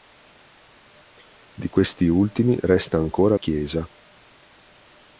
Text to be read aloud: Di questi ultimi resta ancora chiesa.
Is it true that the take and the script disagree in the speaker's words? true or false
false